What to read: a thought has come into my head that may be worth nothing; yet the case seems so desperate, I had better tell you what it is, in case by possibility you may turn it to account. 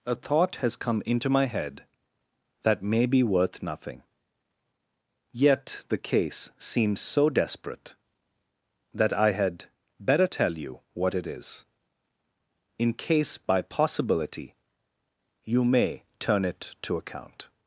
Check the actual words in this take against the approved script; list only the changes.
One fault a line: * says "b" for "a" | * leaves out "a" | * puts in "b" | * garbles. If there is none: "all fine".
* puts in "that"